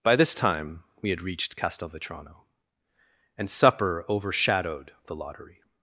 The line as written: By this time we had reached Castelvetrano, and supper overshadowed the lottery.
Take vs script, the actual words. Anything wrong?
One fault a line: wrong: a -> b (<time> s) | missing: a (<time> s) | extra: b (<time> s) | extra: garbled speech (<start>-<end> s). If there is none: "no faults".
no faults